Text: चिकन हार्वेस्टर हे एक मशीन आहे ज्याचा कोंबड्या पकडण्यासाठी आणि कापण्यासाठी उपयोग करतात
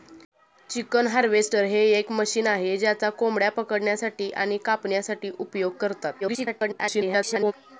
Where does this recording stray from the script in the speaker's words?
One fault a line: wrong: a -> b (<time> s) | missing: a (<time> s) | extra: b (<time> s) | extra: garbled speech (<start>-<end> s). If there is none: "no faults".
extra: garbled speech (6.2-7.5 s)